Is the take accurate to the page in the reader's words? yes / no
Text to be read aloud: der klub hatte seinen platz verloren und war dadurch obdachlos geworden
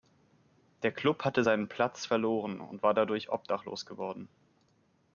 yes